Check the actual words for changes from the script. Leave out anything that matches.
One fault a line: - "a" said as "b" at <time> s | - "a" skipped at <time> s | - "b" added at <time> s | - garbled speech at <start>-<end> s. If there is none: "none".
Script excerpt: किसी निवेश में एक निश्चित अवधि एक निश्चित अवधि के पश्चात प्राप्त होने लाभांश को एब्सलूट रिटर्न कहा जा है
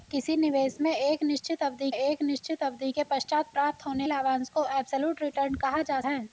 none